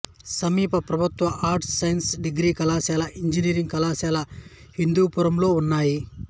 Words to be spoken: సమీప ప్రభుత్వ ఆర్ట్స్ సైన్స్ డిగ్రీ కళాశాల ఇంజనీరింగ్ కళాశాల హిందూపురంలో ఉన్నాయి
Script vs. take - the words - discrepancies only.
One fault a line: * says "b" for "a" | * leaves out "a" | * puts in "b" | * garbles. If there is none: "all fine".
all fine